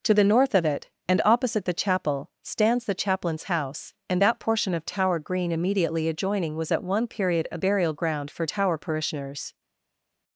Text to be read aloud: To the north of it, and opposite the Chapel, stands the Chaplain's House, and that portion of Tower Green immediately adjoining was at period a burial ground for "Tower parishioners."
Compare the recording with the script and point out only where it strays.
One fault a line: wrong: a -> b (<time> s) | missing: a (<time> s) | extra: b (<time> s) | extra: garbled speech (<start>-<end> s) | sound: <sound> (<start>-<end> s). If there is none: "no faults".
extra: one (6.8 s)